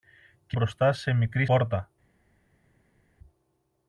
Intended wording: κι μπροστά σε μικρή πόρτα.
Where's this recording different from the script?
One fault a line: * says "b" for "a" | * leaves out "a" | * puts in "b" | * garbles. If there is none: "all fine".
all fine